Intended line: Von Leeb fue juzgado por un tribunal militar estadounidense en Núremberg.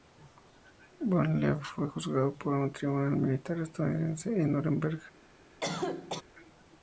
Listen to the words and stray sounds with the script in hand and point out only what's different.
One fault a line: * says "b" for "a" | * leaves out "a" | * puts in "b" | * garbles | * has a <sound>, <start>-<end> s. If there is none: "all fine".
* has a cough, 5.6-6.2 s